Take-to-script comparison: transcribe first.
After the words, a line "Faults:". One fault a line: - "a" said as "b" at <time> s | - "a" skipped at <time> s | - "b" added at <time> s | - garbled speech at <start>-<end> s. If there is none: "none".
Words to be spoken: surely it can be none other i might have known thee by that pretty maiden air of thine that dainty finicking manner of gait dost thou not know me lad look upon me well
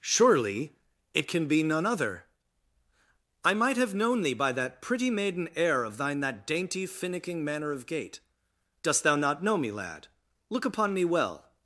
surely it can be none other i might have known thee by that pretty maiden air of thine that dainty finicking manner of gait dost thou not know me lad look upon me well
Faults:
none